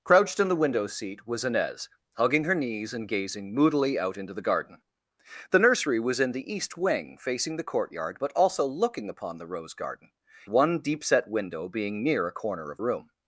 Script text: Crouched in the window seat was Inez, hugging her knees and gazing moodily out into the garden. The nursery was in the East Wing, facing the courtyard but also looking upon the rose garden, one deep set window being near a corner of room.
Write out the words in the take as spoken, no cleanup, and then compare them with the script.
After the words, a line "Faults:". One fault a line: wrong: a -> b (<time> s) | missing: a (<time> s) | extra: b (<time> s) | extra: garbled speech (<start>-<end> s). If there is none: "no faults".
Crouched in the window seat was Inez, hugging her knees and gazing moodily out into the garden. The nursery was in the East Wing, facing the courtyard but also looking upon the rose garden, one deep set window being near a corner of room.
Faults:
no faults